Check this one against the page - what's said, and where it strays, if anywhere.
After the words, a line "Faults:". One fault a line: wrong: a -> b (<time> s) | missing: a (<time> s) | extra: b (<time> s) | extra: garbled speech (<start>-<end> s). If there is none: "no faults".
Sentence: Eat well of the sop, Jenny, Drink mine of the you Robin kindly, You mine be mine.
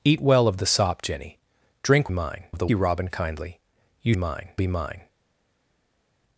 Eat well of the sop, Jenny, Drink mine of the you Robin kindly, You mine be mine.
Faults:
no faults